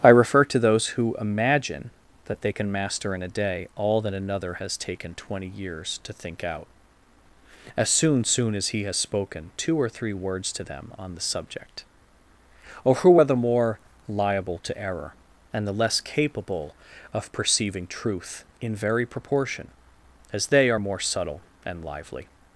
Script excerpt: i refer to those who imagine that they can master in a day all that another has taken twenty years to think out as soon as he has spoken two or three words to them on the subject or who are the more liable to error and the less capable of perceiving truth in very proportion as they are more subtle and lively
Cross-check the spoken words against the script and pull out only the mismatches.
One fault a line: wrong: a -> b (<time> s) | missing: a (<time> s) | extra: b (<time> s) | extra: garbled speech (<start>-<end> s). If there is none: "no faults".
extra: soon (8.2 s)